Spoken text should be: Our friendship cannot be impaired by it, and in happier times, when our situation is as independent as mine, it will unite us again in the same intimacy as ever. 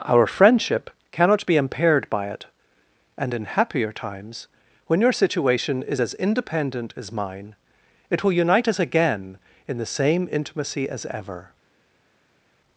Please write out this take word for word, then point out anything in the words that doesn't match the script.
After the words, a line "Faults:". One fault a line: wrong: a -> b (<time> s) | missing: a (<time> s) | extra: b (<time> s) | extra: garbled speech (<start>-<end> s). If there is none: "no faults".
Our friendship cannot be impaired by it, and in happier times, when your situation is as independent as mine, it will unite us again in the same intimacy as ever.
Faults:
wrong: our -> your (5.0 s)